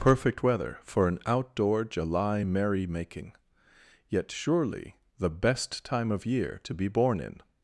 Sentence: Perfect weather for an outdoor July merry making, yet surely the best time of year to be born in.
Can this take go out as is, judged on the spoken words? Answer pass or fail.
pass